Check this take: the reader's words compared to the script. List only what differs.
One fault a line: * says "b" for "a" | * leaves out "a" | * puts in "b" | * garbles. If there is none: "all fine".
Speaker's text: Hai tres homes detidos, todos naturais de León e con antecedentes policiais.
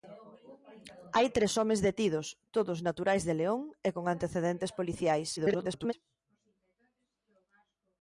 * garbles